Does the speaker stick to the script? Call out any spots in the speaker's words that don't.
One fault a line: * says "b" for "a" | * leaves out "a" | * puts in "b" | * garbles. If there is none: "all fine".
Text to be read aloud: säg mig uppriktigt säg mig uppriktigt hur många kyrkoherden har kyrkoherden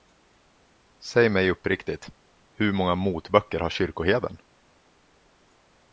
* leaves out "säg mig uppriktigt"
* says "motböcker" for "kyrkoherden"